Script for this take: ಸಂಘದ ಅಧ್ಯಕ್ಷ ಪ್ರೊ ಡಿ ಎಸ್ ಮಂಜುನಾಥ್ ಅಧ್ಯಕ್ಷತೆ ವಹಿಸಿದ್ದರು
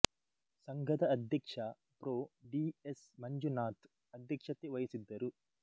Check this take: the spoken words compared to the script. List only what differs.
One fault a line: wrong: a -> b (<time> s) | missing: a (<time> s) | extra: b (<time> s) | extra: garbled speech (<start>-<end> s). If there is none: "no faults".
no faults